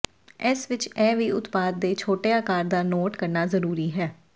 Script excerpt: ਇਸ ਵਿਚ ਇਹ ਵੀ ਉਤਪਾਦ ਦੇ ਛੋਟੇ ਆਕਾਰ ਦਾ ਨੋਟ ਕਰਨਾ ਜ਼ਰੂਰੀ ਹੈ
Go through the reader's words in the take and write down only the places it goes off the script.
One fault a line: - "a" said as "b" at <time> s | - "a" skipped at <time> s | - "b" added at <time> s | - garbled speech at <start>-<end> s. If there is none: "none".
none